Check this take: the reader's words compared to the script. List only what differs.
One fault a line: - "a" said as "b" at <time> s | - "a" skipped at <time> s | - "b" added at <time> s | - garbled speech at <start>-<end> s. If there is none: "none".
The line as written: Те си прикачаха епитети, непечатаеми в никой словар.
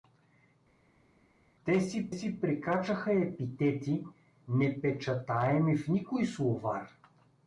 - "си" added at 2.1 s